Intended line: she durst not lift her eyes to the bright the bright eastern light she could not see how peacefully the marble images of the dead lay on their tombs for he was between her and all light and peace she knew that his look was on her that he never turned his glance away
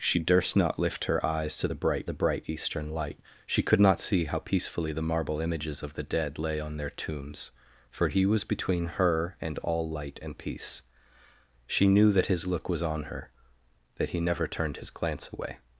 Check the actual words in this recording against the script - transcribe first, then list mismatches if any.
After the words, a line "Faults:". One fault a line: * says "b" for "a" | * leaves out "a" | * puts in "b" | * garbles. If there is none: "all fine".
she durst not lift her eyes to the bright the bright eastern light she could not see how peacefully the marble images of the dead lay on their tombs for he was between her and all light and peace she knew that his look was on her that he never turned his glance away
Faults:
all fine